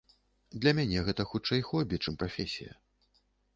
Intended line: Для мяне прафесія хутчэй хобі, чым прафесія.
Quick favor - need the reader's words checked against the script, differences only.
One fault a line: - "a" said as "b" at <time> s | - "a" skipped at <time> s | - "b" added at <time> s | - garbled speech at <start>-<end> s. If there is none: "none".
- "прафесія" said as "гэта" at 1.1 s